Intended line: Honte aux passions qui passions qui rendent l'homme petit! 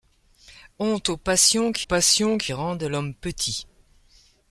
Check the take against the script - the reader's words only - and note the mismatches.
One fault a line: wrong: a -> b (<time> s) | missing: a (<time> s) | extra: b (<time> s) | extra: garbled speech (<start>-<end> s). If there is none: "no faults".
no faults